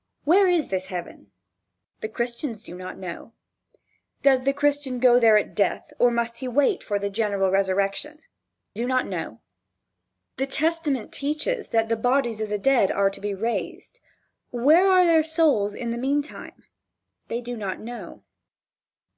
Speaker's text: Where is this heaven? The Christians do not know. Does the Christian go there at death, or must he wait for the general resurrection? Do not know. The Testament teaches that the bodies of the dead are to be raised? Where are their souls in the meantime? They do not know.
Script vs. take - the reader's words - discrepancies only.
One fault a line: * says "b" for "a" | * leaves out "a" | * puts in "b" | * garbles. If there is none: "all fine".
all fine